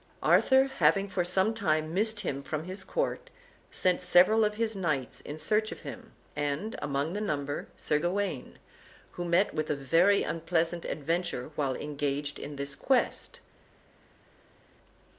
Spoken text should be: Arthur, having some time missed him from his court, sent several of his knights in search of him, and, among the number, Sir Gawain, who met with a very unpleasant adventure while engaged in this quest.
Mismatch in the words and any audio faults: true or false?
true